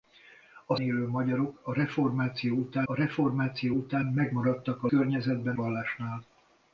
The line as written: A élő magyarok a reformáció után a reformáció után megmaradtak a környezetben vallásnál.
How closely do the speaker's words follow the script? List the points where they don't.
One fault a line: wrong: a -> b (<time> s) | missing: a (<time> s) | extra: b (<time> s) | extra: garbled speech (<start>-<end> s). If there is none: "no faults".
no faults